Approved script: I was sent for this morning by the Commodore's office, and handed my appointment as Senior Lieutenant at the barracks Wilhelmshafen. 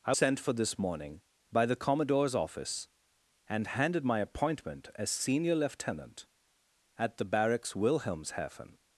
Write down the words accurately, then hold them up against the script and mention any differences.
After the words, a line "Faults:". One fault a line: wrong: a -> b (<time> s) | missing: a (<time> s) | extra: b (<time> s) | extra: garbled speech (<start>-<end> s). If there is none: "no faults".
I sent for this morning by the Commodore's office, and handed my appointment as Senior Lieutenant at the barracks Wilhelmshafen.
Faults:
missing: was (0.1 s)